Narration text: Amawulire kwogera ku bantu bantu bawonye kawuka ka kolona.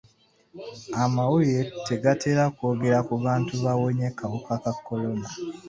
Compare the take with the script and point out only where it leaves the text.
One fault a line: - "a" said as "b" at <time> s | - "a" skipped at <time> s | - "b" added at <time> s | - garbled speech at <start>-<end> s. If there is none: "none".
- "tegatera" added at 1.9 s
- "bantu" skipped at 3.5 s